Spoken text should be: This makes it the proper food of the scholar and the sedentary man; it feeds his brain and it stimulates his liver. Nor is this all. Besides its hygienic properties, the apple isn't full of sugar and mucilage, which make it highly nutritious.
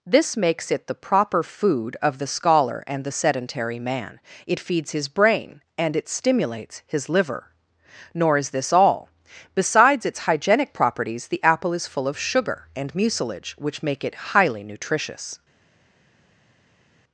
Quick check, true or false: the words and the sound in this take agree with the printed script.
false